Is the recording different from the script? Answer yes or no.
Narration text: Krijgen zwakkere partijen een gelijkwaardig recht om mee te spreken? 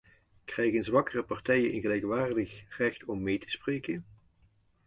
no